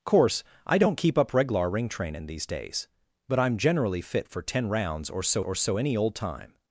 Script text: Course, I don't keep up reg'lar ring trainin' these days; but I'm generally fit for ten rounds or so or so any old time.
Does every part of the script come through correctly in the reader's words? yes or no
yes